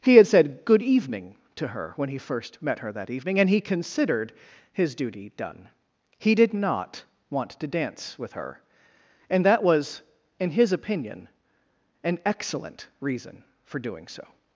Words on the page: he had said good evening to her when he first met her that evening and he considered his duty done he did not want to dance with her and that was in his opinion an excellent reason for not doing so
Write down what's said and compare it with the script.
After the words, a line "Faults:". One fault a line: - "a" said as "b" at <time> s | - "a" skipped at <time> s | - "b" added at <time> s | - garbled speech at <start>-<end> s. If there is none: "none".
he had said good evening to her when he first met her that evening and he considered his duty done he did not want to dance with her and that was in his opinion an excellent reason for doing so
Faults:
- "not" skipped at 13.8 s